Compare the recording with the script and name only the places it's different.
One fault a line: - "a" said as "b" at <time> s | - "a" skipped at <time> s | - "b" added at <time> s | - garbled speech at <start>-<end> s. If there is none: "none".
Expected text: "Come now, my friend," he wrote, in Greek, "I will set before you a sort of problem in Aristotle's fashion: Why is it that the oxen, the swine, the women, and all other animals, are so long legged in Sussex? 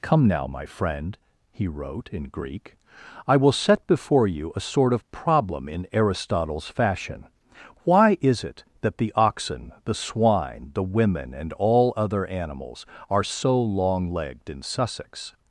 none